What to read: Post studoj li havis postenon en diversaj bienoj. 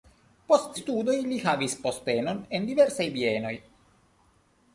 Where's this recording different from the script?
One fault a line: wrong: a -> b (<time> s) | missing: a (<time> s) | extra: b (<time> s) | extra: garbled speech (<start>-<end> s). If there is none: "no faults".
no faults